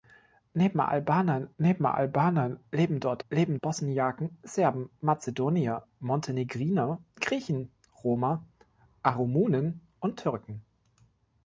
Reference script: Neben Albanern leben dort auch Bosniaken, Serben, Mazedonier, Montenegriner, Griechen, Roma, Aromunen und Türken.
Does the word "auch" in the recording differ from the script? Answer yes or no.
yes